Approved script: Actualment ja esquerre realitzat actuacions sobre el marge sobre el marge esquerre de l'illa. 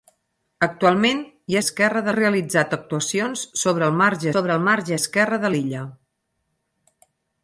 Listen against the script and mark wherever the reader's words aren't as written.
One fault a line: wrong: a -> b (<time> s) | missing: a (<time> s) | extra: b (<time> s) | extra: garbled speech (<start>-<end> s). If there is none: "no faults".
no faults